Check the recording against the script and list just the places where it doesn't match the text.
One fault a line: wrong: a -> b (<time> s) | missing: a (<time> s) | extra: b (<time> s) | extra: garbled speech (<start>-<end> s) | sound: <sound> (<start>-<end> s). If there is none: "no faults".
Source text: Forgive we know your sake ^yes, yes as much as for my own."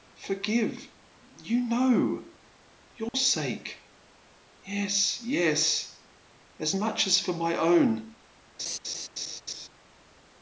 wrong: we -> you (1.4 s)
sound: dropout (3.1-3.1 s)
sound: laugh (8.6-9.7 s)